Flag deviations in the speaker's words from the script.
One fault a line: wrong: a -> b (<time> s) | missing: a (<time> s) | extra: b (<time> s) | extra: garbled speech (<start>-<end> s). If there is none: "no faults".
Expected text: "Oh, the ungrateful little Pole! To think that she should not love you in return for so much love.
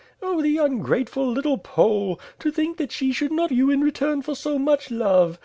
missing: love (3.5 s)